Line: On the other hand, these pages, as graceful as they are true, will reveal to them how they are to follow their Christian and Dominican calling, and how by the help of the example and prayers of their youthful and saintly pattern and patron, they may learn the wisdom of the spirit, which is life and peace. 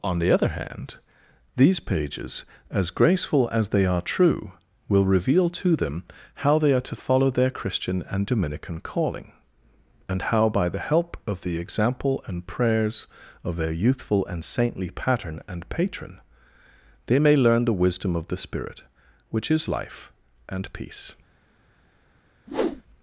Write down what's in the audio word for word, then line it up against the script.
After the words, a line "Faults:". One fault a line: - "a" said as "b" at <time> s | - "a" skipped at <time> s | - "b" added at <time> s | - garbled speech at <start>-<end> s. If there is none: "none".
On the other hand, these pages, as graceful as they are true, will reveal to them how they are to follow their Christian and Dominican calling, and how by the help of the example and prayers of their youthful and saintly pattern and patron, they may learn the wisdom of the spirit, which is life and peace.
Faults:
none